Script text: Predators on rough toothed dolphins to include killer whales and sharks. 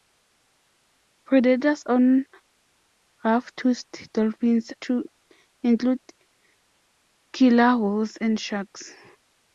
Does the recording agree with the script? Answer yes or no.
yes